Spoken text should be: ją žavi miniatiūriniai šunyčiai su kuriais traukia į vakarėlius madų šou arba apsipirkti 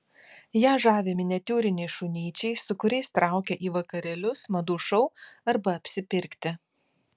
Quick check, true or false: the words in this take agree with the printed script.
true